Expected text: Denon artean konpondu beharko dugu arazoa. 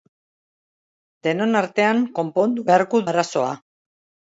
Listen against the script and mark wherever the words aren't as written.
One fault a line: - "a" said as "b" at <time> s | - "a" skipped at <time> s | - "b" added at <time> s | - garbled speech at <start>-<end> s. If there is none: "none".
- "dugu" skipped at 3.0 s